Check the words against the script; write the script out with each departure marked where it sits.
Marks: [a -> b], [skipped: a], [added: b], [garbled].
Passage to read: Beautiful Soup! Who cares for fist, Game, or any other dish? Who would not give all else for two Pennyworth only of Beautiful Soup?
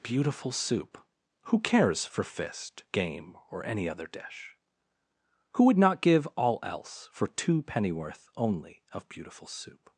Beautiful Soup! Who cares for fist, Game, or any other dish? Who would not give all else for two Pennyworth only of Beautiful Soup?